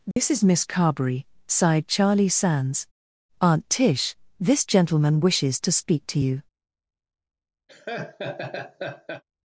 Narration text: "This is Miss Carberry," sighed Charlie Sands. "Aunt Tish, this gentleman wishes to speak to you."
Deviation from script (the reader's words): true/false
false